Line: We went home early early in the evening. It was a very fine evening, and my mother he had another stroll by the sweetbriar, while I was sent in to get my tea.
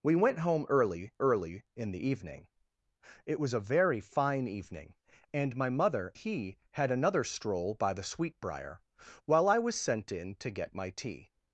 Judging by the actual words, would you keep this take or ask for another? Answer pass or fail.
pass